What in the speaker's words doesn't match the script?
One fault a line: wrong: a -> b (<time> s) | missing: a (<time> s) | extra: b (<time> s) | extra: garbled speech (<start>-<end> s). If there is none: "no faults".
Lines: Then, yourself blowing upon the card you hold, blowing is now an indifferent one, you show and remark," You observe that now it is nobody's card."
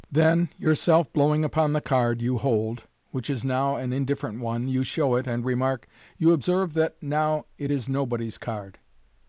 wrong: blowing -> which (3.1 s)
extra: it (5.1 s)